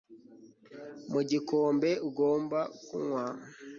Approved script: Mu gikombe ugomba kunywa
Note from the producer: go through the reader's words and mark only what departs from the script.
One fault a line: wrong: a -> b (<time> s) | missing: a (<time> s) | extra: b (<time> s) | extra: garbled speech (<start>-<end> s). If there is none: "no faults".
no faults